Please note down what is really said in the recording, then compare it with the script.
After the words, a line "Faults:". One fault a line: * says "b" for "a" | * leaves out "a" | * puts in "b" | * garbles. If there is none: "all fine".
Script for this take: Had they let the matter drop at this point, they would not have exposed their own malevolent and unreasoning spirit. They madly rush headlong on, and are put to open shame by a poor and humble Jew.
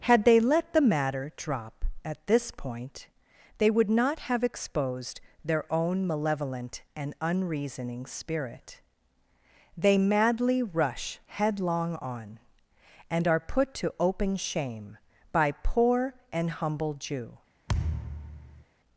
Had they let the matter drop at this point, they would not have exposed their own malevolent and unreasoning spirit. They madly rush headlong on, and are put to open shame by poor and humble Jew.
Faults:
* leaves out "a"